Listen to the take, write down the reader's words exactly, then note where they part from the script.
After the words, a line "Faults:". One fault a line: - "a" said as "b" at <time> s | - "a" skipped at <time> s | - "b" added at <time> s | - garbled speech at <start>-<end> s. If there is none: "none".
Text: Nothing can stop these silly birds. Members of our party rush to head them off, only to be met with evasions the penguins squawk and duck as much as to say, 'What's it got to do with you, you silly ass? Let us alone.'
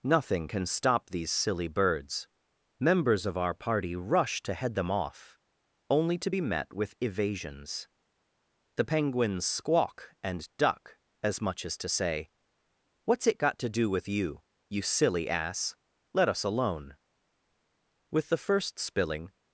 Nothing can stop these silly birds. Members of our party rush to head them off, only to be met with evasions the penguins squawk and duck as much as to say, 'What's it got to do with you, you silly ass? Let us alone.' With the first spilling
Faults:
- "With the first spilling" added at 18.1 s